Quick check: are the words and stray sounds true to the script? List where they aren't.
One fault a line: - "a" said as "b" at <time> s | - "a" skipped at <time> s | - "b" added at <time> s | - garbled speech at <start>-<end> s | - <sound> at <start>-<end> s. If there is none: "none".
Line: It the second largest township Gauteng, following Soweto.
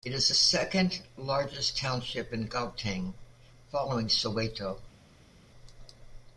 - "is" added at 0.1 s
- "in" added at 2.3 s